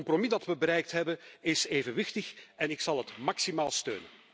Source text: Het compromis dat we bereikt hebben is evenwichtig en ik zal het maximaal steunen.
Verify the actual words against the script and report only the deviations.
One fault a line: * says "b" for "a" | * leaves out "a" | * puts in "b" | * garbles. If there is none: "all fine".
all fine